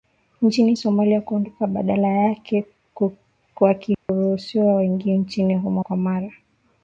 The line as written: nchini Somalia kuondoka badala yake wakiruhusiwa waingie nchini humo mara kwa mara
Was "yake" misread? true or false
false